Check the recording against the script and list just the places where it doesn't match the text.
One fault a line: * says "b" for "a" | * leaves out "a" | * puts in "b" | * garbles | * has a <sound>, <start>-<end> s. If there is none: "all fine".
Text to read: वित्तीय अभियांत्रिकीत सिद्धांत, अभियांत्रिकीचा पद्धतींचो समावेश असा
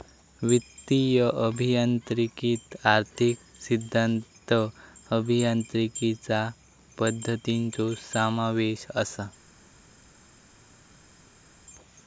* puts in "आर्थिक"